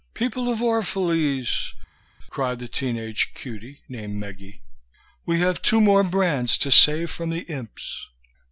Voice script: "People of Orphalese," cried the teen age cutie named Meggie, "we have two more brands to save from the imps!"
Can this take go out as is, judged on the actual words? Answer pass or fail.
pass